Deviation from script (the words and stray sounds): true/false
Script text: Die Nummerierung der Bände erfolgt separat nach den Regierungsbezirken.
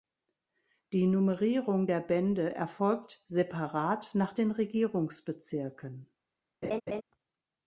true